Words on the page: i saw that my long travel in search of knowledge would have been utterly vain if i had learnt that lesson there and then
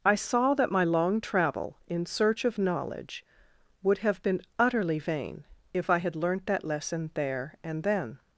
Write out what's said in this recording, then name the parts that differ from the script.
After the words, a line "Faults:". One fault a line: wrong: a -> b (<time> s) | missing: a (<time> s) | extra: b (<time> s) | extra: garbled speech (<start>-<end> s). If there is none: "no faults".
i saw that my long travel in search of knowledge would have been utterly vain if i had learnt that lesson there and then
Faults:
no faults